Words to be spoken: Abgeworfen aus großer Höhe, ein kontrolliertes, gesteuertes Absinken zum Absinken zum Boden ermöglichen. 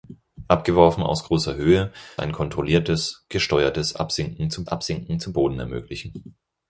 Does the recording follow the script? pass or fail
pass